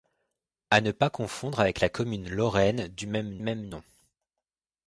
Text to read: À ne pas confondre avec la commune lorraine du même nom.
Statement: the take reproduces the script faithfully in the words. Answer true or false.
false